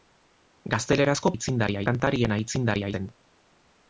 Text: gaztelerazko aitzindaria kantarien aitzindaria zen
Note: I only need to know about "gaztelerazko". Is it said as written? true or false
true